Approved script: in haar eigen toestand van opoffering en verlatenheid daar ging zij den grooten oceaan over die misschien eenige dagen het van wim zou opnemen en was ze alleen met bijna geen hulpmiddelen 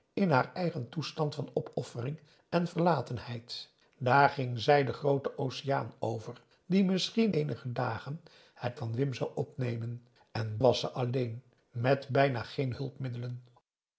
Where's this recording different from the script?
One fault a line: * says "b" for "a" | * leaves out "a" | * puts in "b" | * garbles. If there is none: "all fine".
all fine